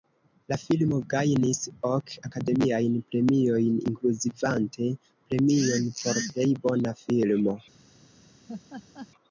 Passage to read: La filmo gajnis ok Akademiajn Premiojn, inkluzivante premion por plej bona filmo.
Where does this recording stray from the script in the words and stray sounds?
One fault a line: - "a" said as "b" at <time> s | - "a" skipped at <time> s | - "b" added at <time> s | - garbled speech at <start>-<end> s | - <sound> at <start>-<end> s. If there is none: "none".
- laugh at 8.5-9.1 s